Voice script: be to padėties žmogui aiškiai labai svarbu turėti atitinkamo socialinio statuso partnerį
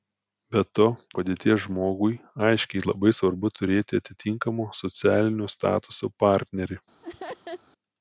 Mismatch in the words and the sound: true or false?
true